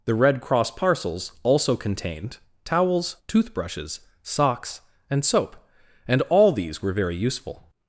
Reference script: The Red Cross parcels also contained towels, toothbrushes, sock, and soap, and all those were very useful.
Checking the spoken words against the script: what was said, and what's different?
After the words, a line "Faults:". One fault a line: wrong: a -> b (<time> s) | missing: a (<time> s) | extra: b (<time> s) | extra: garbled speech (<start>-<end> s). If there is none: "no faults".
The Red Cross parcels also contained towels, toothbrushes, socks, and soap, and all these were very useful.
Faults:
wrong: sock -> socks (4.2 s)
wrong: those -> these (6.5 s)